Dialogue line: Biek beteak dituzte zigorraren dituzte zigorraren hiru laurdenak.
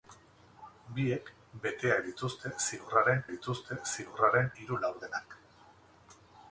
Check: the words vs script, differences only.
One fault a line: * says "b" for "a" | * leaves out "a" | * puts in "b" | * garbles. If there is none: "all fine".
all fine